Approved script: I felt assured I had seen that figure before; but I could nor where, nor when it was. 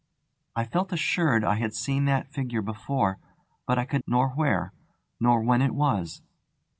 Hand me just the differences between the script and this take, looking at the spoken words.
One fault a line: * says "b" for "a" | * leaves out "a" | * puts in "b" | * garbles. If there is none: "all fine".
all fine